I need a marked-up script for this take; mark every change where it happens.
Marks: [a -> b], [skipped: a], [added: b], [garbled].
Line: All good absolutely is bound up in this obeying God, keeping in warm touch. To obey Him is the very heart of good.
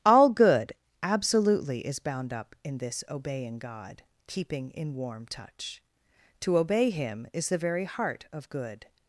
All good absolutely is bound up in this obeying God, keeping in warm touch. To obey Him is the very heart of good.